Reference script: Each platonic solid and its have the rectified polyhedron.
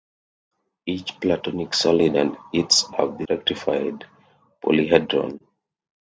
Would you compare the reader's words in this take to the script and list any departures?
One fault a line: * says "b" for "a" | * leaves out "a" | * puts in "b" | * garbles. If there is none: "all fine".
all fine